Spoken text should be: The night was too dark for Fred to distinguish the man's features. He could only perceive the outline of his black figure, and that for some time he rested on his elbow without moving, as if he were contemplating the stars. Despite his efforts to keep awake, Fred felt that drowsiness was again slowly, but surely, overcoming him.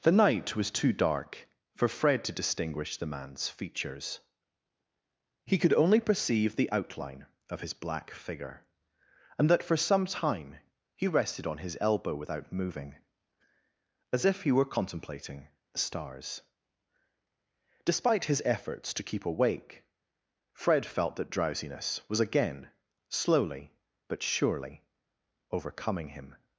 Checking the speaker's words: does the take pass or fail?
pass